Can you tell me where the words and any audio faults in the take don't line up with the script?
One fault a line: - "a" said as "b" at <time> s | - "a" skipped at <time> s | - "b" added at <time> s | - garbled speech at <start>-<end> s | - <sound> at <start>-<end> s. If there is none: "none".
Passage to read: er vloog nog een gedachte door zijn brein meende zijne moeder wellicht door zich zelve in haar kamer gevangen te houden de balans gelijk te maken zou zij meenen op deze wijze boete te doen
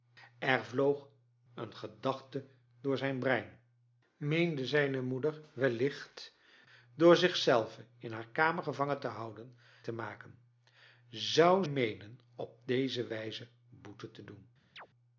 - "nog" skipped at 1.1 s
- "de balans gelijk" skipped at 9.6 s
- "zij" skipped at 11.6 s
- chirp at 14.8-14.9 s